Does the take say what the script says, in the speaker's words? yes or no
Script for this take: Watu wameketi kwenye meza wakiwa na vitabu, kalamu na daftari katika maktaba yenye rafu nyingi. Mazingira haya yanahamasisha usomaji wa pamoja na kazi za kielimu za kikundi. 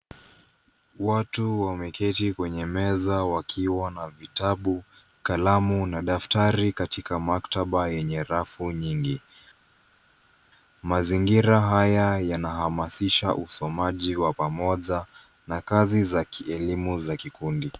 yes